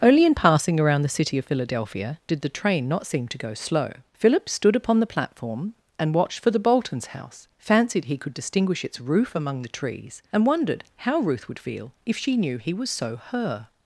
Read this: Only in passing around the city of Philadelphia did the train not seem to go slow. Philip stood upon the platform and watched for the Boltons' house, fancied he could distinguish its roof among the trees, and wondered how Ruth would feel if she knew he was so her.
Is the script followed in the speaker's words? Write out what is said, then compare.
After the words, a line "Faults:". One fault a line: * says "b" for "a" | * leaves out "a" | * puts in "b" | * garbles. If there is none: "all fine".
Only in passing around the city of Philadelphia did the train not seem to go slow. Philip stood upon the platform and watched for the Boltons' house, fancied he could distinguish its roof among the trees, and wondered how Ruth would feel if she knew he was so her.
Faults:
all fine